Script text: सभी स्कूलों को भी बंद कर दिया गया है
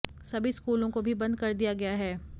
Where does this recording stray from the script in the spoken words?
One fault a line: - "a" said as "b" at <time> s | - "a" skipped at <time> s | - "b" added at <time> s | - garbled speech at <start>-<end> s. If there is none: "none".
none